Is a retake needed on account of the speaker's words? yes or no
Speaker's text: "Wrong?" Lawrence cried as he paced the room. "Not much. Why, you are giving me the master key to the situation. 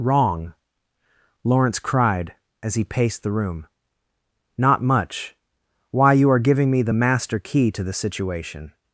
no